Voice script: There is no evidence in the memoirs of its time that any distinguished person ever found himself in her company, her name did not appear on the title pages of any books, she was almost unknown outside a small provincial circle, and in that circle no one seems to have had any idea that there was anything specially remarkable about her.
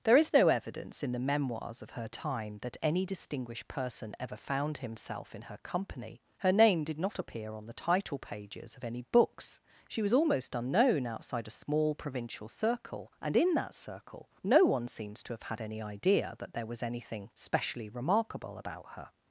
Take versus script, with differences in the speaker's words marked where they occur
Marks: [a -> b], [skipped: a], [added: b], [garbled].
There is no evidence in the memoirs of [its -> her] time that any distinguished person ever found himself in her company, her name did not appear on the title pages of any books, she was almost unknown outside a small provincial circle, and in that circle no one seems to have had any idea that there was anything specially remarkable about her.